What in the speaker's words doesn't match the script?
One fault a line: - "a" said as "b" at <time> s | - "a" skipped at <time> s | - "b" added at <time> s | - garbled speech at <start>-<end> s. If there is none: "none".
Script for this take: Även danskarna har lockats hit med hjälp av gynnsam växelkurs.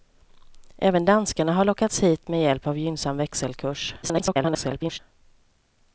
- garbled speech at 4.0-5.0 s